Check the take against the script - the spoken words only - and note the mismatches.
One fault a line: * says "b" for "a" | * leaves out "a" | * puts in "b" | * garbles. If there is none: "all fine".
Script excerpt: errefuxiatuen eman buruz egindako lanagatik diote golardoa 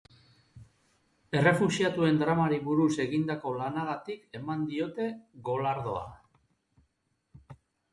* says "dramari" for "eman"
* puts in "eman"